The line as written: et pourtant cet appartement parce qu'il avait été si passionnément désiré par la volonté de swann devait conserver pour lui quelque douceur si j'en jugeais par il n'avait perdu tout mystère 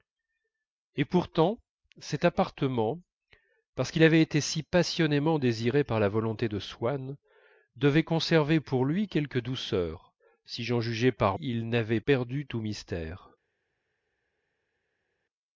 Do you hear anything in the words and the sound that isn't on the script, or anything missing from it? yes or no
no